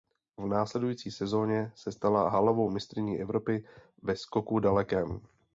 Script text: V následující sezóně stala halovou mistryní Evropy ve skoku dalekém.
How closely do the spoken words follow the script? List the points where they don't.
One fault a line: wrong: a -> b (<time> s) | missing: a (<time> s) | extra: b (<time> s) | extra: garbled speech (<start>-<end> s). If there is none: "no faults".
extra: se (1.8 s)